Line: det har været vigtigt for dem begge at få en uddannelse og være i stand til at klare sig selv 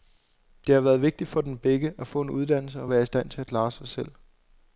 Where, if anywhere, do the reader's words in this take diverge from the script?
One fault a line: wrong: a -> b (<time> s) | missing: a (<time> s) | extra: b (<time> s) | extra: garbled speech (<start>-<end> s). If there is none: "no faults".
no faults